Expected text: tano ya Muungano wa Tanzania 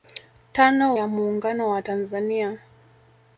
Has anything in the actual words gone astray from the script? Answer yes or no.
no